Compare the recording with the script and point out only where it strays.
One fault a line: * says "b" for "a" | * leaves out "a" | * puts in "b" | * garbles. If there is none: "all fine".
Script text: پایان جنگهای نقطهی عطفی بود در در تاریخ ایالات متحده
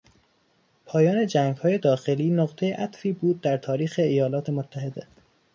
* puts in "داخلی"
* leaves out "در"